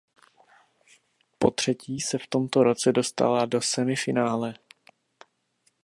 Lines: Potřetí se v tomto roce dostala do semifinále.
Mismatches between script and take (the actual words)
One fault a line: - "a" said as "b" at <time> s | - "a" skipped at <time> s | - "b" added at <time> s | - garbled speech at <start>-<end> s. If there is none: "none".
none